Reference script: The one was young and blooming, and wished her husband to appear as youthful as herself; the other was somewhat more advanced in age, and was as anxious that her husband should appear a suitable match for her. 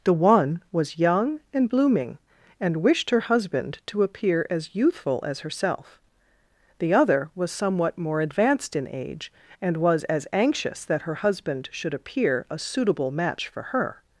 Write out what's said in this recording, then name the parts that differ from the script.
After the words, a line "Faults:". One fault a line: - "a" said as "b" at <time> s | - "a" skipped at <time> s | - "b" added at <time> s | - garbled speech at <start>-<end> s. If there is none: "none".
The one was young and blooming, and wished her husband to appear as youthful as herself; the other was somewhat more advanced in age, and was as anxious that her husband should appear a suitable match for her.
Faults:
none